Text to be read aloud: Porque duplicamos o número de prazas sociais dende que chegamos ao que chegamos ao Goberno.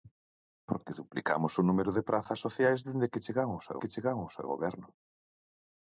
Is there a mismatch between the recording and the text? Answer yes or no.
no